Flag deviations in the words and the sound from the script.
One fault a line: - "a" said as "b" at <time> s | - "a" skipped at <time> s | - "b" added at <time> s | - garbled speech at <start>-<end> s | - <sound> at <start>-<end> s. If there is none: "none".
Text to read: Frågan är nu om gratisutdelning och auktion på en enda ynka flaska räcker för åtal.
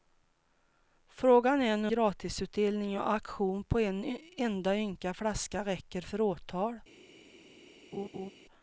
- "om" skipped at 1.9 s
- laugh at 7.9-8.3 s